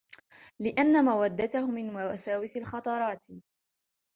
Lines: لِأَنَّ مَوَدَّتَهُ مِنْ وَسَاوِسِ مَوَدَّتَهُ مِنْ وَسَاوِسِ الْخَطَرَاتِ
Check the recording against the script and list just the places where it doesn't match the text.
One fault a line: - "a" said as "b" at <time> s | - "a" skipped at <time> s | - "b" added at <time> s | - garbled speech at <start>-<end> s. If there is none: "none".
- "مَوَدَّتَهُ مِنْ وَسَاوِسِ" skipped at 2.6 s